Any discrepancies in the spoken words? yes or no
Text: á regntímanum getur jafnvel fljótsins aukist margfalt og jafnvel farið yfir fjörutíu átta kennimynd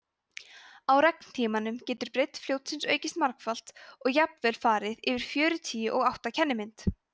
yes